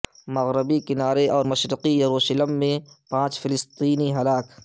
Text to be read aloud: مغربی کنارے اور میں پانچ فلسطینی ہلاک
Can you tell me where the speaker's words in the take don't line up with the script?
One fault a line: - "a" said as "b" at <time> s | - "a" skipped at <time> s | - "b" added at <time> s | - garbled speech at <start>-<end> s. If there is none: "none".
- "مشرقی یروشلم" added at 1.4 s